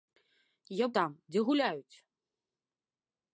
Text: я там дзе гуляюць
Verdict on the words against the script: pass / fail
pass